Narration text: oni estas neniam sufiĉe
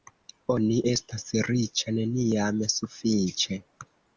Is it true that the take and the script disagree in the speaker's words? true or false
true